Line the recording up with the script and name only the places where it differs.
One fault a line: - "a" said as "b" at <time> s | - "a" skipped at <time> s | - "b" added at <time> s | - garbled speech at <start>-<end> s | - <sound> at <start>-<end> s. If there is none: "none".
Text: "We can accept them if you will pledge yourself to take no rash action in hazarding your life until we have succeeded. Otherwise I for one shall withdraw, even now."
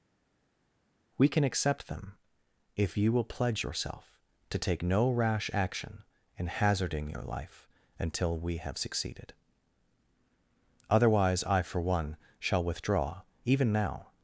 none